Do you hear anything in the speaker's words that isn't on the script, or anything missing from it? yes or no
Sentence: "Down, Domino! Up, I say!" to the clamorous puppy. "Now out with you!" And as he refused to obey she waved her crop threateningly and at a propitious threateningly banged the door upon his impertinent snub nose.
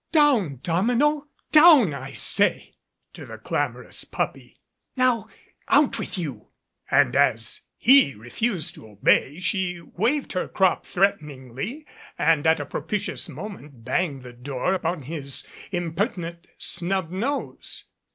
yes